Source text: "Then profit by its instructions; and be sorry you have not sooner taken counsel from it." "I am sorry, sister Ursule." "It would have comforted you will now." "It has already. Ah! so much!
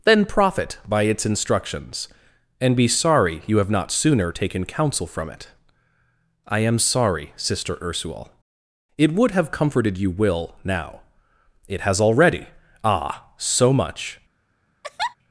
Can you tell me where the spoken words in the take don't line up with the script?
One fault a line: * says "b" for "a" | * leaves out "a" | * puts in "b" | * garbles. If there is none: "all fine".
all fine